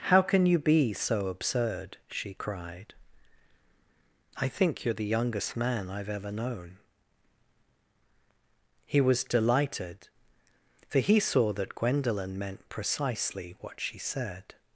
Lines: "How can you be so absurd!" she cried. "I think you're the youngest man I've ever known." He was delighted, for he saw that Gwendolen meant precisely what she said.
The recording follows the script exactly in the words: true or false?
true